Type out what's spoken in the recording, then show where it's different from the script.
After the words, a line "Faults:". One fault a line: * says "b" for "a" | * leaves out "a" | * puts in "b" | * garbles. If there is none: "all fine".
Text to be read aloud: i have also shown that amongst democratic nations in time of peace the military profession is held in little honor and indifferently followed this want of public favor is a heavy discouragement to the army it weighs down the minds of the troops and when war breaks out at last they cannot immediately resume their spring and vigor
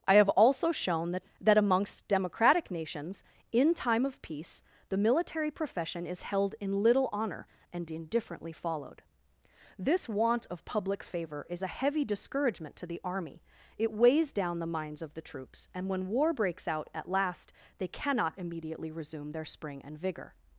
i have also shown that that amongst democratic nations in time of peace the military profession is held in little honor and indifferently followed this want of public favor is a heavy discouragement to the army it weighs down the minds of the troops and when war breaks out at last they cannot immediately resume their spring and vigor
Faults:
* puts in "that"